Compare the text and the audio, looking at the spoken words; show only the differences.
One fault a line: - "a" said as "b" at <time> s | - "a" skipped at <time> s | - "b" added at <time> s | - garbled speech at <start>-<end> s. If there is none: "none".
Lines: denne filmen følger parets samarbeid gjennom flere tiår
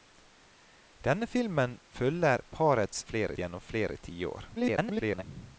- "samarbeid" said as "flere" at 3.0 s
- garbled speech at 4.6-5.2 s